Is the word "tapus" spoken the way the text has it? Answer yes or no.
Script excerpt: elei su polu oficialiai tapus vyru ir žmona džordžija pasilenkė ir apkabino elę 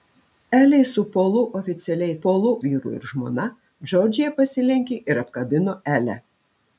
no